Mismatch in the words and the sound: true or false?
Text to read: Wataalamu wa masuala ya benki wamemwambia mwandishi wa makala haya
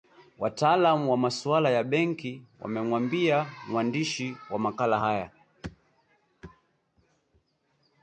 false